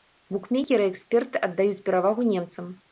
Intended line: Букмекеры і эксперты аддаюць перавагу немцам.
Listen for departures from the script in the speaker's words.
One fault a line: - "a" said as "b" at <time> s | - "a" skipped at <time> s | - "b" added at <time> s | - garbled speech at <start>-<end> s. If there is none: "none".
none